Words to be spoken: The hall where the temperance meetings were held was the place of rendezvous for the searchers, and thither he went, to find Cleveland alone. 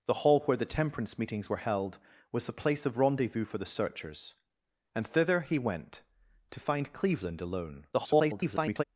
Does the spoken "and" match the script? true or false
true